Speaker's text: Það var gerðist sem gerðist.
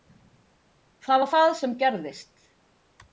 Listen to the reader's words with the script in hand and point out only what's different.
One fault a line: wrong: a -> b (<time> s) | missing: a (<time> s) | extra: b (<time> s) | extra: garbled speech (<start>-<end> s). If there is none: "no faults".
wrong: gerðist -> það (1.3 s)